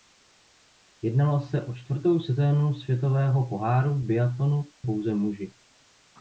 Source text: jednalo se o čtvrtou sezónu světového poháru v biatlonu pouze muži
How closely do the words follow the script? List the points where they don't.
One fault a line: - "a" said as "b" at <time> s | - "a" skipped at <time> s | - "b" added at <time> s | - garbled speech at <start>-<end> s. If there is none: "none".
none